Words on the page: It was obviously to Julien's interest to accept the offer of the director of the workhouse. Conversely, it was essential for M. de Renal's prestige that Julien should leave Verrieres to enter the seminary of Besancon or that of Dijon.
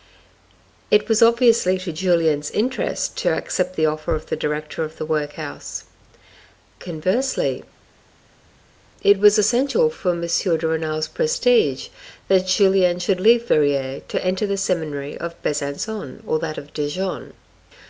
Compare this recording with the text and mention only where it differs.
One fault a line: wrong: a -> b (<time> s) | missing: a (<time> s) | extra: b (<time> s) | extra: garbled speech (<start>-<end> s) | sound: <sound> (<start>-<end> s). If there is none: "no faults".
no faults